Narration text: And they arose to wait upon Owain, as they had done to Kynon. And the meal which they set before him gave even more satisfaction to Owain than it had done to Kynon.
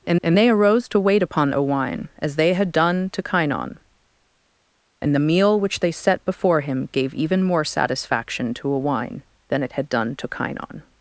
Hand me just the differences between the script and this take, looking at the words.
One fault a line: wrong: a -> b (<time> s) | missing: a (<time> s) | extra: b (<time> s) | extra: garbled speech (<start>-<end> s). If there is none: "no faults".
extra: and (0.2 s)